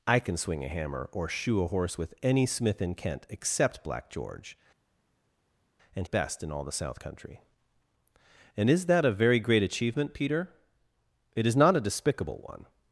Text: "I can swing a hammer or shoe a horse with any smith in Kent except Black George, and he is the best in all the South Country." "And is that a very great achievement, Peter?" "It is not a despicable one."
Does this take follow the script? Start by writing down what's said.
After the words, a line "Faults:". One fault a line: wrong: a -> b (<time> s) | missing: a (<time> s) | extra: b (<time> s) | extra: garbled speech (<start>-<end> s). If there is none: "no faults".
"I can swing a hammer or shoe a horse with any smith in Kent except Black George, and best in all the South Country." "And is that a very great achievement, Peter?" "It is not a despicable one."
Faults:
missing: he is the (6.1 s)